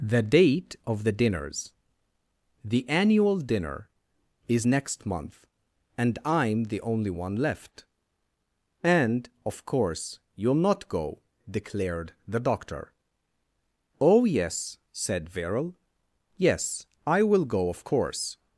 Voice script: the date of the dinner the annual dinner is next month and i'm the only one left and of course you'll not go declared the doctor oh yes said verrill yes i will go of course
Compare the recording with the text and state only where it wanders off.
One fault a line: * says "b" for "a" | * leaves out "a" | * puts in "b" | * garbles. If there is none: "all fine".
* says "dinners" for "dinner"